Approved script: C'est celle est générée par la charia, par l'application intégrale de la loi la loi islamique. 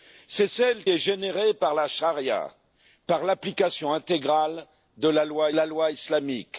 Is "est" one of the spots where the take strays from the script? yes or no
no